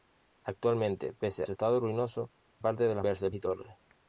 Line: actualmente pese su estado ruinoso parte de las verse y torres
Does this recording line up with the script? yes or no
yes